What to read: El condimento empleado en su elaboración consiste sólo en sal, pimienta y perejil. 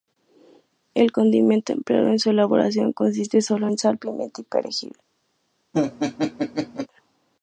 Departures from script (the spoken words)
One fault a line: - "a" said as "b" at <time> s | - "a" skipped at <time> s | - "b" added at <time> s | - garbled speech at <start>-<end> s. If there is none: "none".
none